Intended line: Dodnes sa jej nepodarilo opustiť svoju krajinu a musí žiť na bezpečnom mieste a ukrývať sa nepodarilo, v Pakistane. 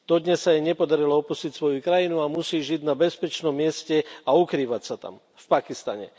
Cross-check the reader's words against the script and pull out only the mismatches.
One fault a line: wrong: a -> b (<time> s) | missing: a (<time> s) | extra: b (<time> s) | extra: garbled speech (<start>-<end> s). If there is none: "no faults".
wrong: nepodarilo -> tam (5.0 s)